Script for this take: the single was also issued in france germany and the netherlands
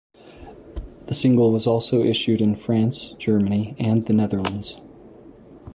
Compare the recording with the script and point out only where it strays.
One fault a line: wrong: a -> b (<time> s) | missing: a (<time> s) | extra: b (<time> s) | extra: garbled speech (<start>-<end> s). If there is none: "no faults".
no faults